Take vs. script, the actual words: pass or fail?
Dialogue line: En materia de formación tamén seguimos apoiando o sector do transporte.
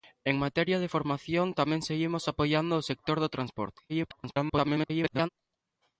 fail